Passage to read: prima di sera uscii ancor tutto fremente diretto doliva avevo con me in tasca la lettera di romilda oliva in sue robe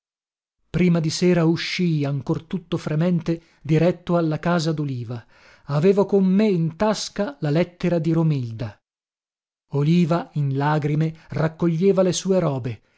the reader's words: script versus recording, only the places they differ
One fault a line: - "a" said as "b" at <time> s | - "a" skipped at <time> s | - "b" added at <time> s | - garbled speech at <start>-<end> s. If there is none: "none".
- "alla casa" added at 4.2 s
- "lagrime raccoglieva le" added at 10.6 s